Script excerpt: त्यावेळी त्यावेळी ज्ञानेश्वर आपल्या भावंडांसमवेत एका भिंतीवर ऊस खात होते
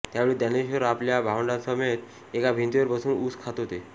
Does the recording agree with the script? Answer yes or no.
no